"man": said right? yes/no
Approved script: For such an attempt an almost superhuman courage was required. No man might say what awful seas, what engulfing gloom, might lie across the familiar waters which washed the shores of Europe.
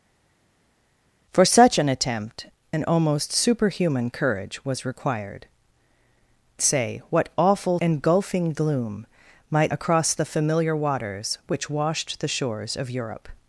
no